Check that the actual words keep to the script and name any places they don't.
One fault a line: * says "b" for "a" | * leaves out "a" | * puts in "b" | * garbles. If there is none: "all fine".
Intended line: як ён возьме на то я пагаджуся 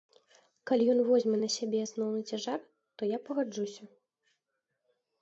* says "калі" for "як"
* puts in "сябе асноўны цяжар"